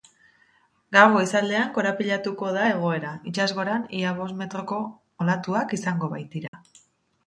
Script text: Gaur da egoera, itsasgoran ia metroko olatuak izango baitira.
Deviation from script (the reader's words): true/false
true